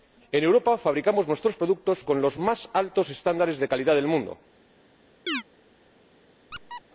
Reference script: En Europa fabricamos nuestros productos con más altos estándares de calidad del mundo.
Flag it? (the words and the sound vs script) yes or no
yes